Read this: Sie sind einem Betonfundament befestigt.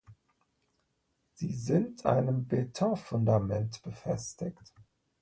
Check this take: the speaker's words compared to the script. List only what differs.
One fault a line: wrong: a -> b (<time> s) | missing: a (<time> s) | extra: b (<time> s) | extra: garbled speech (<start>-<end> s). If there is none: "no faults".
no faults